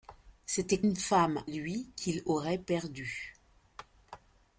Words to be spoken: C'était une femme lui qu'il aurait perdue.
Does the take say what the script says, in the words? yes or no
yes